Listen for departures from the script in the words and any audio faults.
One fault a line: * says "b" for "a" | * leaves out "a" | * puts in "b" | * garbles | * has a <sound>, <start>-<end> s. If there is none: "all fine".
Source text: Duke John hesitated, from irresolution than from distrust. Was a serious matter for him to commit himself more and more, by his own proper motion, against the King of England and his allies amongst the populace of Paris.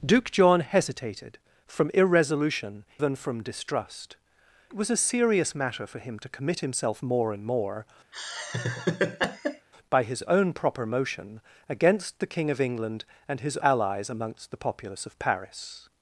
* has a laugh, 8.1-9.7 s